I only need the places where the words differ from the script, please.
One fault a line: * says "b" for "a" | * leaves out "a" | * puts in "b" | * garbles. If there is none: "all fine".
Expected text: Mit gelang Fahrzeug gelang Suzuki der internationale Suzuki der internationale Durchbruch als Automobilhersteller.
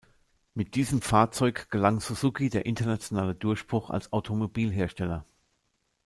* says "diesem" for "gelang"
* leaves out "Suzuki der internationale"